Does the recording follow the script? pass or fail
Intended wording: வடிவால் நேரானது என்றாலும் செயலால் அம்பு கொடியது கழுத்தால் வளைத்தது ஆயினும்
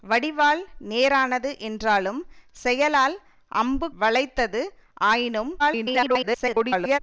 fail